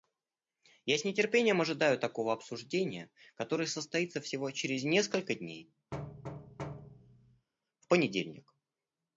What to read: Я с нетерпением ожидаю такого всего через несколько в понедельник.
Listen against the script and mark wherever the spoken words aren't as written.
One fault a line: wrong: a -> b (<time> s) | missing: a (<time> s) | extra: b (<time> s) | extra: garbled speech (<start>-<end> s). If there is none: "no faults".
extra: обсуждения которое состоится (2.3 s)
extra: дней (5.3 s)